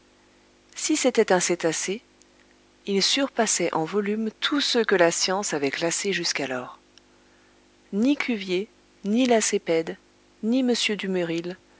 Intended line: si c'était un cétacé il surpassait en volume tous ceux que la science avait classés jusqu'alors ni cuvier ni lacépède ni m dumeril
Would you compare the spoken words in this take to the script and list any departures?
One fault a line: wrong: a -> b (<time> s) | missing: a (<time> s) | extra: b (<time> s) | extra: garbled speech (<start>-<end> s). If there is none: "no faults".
no faults